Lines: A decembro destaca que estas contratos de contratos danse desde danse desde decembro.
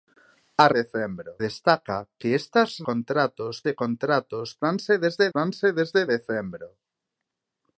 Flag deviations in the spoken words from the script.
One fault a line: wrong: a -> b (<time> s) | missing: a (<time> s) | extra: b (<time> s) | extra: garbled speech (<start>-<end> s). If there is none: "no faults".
no faults